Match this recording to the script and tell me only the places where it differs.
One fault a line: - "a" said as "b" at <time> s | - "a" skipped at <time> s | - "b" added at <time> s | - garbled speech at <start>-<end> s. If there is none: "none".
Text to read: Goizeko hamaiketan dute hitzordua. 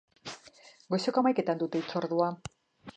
none